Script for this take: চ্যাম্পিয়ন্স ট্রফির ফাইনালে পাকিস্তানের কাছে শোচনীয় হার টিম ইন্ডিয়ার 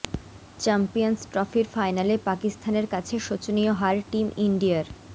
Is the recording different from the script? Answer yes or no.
no